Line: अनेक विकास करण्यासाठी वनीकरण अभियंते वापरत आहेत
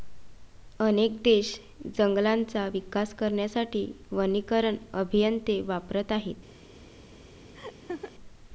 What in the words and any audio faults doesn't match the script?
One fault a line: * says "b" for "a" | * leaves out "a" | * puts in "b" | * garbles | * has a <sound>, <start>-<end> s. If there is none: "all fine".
* puts in "देश जंगलांचा"
* has a laugh, 7.5-8.1 s